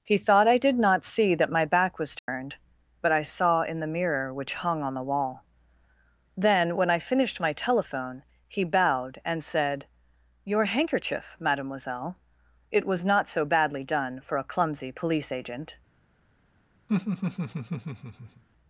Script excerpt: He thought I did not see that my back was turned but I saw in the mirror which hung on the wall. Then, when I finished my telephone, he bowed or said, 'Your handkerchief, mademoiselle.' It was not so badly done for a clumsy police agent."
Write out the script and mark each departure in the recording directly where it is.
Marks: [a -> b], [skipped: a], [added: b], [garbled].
He thought I did not see that my back was turned but I saw in the mirror which hung on the wall. Then, when I finished my telephone, he bowed [or -> and] said, 'Your handkerchief, mademoiselle.' It was not so badly done for a clumsy police agent."